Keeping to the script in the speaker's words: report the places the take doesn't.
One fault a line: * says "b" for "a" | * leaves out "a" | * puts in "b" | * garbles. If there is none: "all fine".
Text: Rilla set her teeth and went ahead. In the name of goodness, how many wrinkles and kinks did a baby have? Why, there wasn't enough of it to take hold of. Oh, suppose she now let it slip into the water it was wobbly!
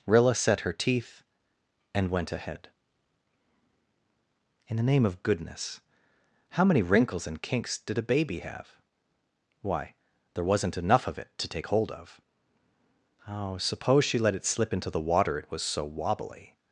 * leaves out "now"
* puts in "so"